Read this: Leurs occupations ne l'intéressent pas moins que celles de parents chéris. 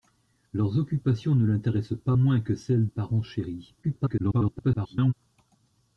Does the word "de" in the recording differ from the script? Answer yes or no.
yes